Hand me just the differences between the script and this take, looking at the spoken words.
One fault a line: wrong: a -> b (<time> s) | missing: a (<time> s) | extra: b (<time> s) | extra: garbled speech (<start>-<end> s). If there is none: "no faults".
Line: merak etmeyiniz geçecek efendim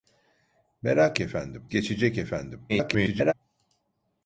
wrong: etmeyiniz -> efendim (1.2 s)
extra: garbled speech (2.7-3.3 s)